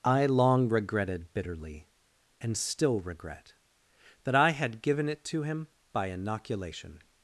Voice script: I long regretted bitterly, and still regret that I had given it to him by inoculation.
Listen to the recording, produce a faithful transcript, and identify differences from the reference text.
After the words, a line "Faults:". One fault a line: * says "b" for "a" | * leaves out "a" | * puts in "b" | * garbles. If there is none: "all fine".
I long regretted bitterly, and still regret that I had given it to him by inoculation.
Faults:
all fine